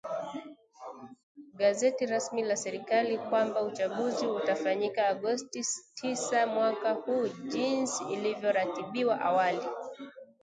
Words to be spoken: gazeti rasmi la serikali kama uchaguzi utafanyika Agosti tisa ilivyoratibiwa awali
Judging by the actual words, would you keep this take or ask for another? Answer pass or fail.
fail